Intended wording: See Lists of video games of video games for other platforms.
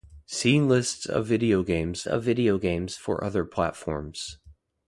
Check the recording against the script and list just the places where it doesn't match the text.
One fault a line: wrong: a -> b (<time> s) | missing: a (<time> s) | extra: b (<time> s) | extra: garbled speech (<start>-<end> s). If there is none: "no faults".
no faults